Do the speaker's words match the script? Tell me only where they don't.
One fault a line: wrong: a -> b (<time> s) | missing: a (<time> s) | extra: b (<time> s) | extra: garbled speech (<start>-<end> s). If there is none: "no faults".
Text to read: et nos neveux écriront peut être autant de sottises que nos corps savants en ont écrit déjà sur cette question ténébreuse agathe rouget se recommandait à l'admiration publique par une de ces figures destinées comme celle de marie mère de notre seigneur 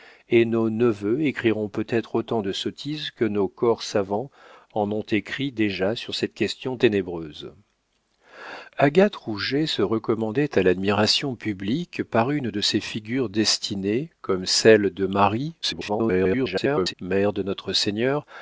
extra: garbled speech (15.6-16.9 s)